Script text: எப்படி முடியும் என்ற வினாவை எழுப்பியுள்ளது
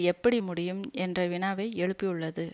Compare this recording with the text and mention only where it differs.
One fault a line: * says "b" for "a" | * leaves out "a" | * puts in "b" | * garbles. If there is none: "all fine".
all fine